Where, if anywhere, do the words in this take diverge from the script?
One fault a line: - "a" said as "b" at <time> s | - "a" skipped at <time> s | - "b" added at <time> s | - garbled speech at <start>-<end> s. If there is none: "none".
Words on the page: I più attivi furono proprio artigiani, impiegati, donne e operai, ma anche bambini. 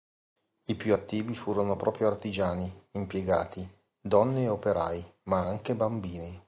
none